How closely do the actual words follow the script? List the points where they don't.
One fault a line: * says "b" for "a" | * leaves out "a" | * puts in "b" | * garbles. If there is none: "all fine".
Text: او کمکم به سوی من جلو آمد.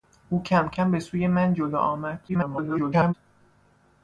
* garbles